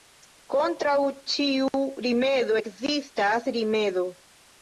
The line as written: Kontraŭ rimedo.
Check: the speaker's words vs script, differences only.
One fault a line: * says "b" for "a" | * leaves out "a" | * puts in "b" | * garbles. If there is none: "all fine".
* puts in "ĉiu rimedo ekzistas"